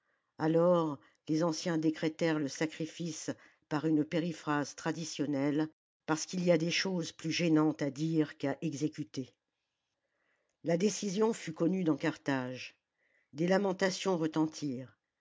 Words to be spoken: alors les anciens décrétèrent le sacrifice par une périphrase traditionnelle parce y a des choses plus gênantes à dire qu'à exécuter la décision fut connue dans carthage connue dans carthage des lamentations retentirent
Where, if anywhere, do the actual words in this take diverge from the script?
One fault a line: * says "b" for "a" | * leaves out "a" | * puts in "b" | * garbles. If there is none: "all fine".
* puts in "qu'il"
* leaves out "connue dans carthage"